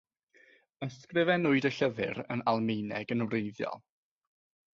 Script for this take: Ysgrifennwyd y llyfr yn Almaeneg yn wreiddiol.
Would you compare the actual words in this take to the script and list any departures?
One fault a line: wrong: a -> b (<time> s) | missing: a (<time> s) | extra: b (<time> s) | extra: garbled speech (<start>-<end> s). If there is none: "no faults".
no faults